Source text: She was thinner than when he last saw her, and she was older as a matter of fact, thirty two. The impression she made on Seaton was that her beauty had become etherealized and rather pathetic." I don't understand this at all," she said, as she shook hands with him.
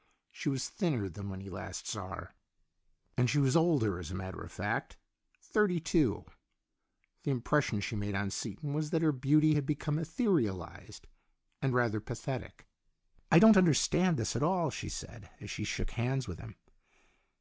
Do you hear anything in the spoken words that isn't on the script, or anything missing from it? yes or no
no